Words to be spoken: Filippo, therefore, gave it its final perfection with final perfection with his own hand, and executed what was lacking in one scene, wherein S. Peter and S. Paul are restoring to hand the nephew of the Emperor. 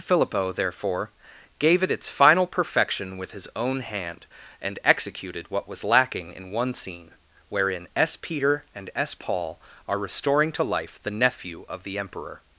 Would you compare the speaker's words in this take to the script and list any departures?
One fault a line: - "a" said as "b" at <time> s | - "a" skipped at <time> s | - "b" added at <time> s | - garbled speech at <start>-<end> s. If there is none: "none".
- "final perfection with" skipped at 3.3 s
- "hand" said as "life" at 10.6 s